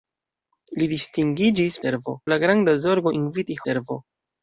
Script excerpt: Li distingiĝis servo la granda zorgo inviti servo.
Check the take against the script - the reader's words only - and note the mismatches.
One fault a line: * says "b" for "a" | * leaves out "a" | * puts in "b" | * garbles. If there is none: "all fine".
all fine